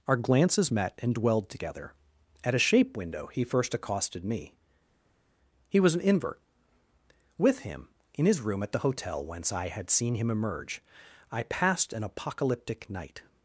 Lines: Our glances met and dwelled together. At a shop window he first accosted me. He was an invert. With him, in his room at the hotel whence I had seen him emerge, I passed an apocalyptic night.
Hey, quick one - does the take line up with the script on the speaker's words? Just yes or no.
no